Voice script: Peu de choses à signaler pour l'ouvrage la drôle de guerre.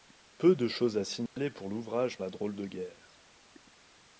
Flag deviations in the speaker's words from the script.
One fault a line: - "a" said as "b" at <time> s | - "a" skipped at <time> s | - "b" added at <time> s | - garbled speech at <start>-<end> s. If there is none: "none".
none